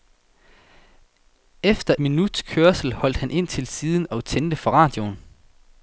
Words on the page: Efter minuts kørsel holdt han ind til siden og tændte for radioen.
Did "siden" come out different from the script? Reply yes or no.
no